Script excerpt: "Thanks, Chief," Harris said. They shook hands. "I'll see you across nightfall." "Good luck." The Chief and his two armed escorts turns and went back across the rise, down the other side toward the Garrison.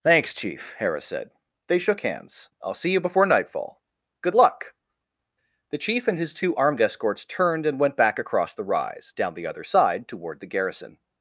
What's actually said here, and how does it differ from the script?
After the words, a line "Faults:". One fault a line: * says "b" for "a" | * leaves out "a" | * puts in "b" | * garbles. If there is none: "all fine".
"Thanks, Chief," Harris said. They shook hands. "I'll see you before nightfall." "Good luck." The Chief and his two armed escorts turned and went back across the rise, down the other side toward the Garrison.
Faults:
* says "before" for "across"
* says "turned" for "turns"